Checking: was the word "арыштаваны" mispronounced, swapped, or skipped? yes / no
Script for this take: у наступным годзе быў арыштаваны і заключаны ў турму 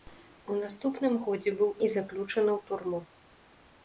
yes